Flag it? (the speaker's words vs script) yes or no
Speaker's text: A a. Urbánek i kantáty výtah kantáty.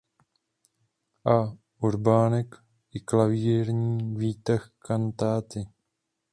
yes